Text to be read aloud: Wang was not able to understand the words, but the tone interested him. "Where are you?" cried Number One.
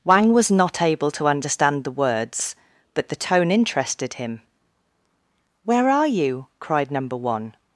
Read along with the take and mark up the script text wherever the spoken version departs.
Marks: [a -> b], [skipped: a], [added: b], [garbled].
Wang was not able to understand the words, but the tone interested him. "Where are you?" cried Number One.